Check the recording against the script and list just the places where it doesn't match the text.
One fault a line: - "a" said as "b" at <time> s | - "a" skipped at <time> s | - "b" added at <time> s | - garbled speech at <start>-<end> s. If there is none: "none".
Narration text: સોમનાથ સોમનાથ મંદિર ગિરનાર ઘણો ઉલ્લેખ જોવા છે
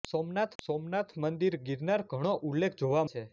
none